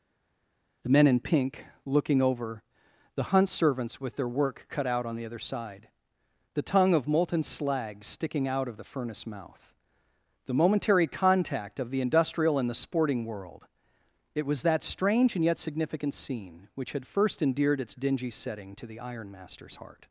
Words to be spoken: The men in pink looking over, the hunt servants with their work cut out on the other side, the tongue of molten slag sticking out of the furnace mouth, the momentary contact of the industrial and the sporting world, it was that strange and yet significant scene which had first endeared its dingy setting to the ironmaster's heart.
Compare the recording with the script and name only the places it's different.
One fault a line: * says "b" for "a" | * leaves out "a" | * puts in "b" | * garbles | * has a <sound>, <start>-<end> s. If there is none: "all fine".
all fine